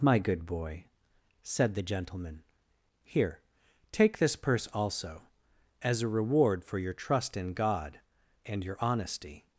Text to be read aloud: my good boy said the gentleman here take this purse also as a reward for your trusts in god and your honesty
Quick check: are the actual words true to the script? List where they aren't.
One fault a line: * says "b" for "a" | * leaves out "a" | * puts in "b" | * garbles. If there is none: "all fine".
* says "trust" for "trusts"